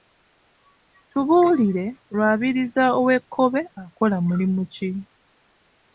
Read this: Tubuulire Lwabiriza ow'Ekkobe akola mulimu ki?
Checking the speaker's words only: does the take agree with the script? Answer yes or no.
yes